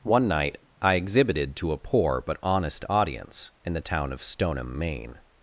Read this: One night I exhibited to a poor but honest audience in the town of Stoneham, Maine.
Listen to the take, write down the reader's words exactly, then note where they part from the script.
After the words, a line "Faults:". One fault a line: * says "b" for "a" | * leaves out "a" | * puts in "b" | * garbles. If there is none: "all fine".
One night I exhibited to a poor but honest audience in the town of Stoneham, Maine.
Faults:
all fine